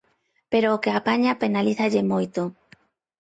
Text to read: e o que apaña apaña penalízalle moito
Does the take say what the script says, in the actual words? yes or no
no